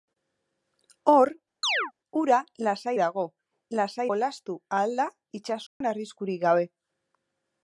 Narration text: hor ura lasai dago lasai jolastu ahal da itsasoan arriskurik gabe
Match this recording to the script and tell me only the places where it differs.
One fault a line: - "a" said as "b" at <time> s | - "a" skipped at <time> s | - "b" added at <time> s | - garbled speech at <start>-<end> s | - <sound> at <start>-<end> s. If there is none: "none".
- chirp at 1.6-1.9 s
- dropout at 5.7-5.8 s